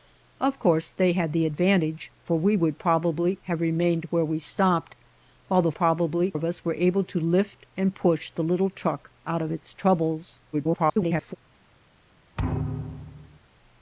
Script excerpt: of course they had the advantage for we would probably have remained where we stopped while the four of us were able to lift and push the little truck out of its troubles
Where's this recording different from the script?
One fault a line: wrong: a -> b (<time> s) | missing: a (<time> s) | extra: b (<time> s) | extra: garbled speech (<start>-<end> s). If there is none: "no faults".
wrong: four -> probably (5.7 s)
extra: garbled speech (10.5-11.4 s)